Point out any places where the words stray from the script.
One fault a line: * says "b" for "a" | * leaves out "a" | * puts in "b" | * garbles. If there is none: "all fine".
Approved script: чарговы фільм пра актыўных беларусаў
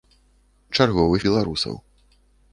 * leaves out "фільм пра актыўных"